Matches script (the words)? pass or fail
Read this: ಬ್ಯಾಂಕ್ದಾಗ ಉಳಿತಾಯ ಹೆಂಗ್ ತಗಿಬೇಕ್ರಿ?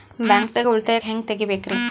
pass